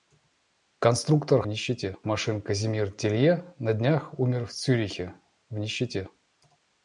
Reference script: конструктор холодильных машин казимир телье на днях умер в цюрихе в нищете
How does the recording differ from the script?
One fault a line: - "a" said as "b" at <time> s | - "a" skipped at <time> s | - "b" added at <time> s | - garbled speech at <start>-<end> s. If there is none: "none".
- "холодильных" said as "нищете" at 1.5 s